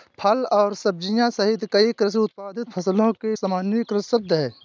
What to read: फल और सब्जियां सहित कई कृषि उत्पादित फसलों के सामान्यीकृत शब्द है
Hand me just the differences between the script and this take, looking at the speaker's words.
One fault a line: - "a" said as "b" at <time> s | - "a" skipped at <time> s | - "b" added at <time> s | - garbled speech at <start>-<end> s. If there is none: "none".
none